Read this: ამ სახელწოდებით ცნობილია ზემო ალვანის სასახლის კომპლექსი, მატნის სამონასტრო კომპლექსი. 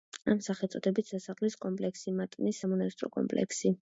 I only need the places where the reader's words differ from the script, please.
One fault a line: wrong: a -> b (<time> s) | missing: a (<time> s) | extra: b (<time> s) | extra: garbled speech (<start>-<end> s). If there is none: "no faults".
missing: ცნობილია ზემო ალვანის (1.1 s)